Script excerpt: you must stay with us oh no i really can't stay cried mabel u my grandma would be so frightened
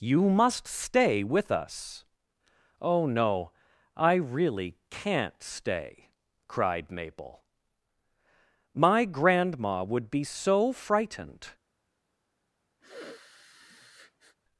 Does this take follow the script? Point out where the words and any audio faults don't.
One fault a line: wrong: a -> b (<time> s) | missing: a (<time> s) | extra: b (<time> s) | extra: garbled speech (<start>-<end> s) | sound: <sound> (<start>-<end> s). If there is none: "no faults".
missing: u (7.4 s)
sound: sniff (12.8-14.4 s)